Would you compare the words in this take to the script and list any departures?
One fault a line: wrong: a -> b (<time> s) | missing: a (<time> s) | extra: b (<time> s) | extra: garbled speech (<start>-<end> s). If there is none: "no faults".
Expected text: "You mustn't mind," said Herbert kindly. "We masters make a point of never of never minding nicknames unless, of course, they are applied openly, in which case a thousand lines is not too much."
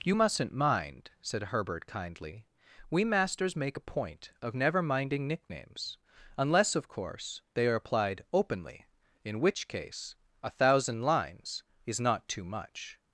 missing: of never (4.8 s)